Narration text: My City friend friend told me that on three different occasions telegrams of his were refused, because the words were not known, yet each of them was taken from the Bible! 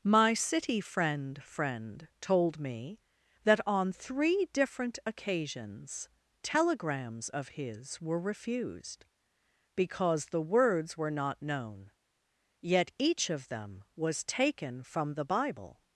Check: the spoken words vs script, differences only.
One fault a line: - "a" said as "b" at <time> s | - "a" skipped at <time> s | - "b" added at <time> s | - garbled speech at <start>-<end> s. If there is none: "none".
none